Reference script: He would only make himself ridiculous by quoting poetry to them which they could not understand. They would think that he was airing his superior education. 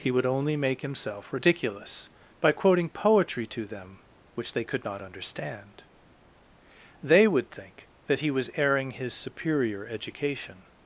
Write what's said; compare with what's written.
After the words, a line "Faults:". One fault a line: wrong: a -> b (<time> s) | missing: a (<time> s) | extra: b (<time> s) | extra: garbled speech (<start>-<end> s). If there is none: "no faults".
He would only make himself ridiculous by quoting poetry to them which they could not understand. They would think that he was airing his superior education.
Faults:
no faults